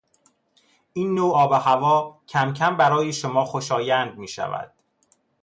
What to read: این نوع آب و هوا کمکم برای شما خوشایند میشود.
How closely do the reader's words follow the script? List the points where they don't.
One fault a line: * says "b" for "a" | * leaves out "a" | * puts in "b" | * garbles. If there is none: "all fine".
all fine